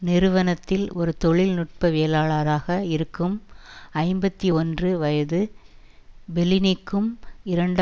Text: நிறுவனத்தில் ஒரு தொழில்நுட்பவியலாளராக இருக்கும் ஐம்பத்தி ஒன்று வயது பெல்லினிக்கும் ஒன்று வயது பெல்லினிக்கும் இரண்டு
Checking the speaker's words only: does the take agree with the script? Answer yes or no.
no